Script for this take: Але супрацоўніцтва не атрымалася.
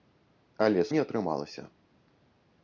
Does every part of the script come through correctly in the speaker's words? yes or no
no